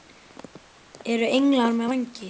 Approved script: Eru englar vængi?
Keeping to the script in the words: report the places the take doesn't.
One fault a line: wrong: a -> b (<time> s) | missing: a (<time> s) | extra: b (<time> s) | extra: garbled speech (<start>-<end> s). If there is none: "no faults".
extra: með (1.7 s)